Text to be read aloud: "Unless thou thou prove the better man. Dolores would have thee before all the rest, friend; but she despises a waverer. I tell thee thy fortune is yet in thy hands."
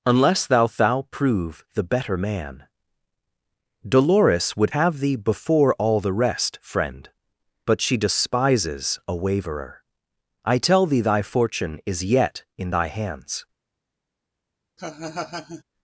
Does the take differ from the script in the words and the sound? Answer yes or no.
yes